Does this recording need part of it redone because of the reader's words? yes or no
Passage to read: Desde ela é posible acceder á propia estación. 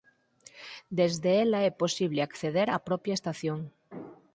no